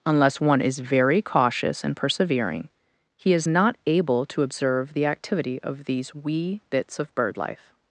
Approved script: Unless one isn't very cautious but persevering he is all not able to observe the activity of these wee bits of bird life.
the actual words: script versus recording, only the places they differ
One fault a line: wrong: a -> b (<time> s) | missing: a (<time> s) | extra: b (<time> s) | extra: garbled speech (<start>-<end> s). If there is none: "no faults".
wrong: isn't -> is (0.6 s)
wrong: but -> and (1.8 s)
missing: all (3.5 s)